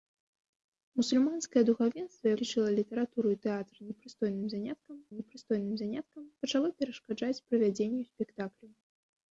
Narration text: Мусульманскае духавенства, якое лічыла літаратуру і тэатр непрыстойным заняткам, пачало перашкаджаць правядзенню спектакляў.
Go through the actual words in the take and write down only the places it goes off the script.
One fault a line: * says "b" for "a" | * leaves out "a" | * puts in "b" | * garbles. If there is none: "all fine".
* leaves out "якое"
* puts in "непрыстойным заняткам"